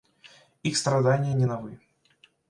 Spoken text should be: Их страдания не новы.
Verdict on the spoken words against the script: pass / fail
pass